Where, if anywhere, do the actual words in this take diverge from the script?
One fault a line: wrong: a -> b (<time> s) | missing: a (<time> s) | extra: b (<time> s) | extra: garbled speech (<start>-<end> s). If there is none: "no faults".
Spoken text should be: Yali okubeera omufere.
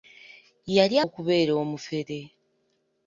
no faults